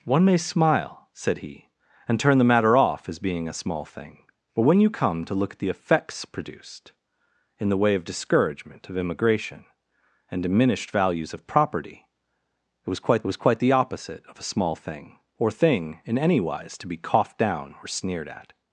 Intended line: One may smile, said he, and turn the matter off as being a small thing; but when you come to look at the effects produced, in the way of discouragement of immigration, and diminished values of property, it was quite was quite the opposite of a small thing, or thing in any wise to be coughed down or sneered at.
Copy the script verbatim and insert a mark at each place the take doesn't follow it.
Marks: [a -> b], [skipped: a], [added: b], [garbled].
One may smile, said he, and turn the matter off as being a small thing; but when you come to look at the effects produced, in the way of discouragement of immigration, and diminished values of property, it was quite was quite the opposite of a small thing, or thing in any wise to be coughed down or sneered at.